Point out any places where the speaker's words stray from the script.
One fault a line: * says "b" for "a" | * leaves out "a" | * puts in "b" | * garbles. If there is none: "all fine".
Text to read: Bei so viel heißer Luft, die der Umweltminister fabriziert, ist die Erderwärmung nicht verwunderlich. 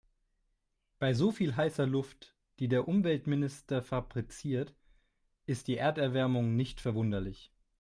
all fine